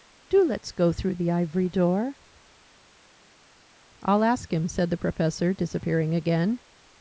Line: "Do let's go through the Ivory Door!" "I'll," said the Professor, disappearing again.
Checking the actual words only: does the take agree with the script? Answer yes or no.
no